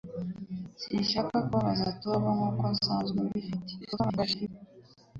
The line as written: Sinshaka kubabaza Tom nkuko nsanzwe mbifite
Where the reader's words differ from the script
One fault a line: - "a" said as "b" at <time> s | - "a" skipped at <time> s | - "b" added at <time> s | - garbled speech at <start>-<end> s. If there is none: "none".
- garbled speech at 3.8-4.5 s